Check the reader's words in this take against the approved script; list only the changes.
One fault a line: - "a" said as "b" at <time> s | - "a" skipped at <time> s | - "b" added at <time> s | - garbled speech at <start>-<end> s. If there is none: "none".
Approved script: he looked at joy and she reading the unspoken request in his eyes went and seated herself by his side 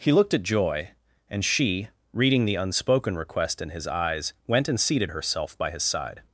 none